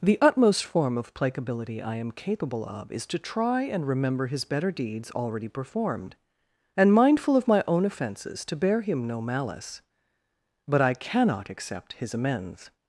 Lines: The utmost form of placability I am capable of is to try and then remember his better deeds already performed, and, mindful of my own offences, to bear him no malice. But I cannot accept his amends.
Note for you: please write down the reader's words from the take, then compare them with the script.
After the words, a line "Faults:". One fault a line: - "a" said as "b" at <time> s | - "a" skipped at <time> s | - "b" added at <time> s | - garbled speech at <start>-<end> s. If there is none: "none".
The utmost form of placability I am capable of is to try and remember his better deeds already performed, and, mindful of my own offences, to bear him no malice. But I cannot accept his amends.
Faults:
- "then" skipped at 3.9 s